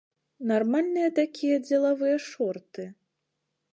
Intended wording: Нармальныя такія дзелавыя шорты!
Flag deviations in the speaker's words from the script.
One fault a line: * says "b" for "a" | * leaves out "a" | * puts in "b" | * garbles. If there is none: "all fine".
all fine